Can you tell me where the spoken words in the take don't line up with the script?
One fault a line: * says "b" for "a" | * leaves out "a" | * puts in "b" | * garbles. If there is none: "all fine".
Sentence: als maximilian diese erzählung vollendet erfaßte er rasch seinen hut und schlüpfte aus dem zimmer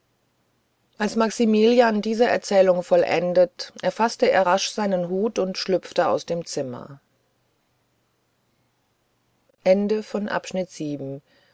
all fine